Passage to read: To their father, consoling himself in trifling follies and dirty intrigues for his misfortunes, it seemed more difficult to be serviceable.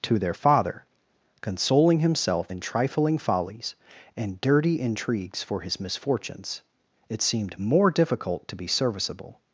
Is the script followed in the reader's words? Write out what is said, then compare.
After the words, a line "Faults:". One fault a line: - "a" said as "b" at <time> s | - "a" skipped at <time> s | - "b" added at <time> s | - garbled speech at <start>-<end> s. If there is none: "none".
To their father, consoling himself in trifling follies and dirty intrigues for his misfortunes, it seemed more difficult to be serviceable.
Faults:
none